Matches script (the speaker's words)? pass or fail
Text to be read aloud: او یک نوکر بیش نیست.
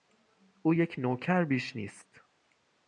pass